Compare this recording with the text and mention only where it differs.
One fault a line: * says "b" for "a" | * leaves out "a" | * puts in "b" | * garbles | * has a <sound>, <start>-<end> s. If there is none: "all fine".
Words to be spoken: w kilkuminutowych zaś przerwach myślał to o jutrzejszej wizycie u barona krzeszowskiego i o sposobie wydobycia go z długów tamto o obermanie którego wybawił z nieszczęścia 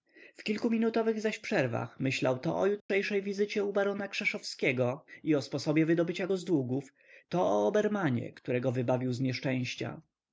* has a dropout, 2.8-2.9 s
* says "to" for "tamto"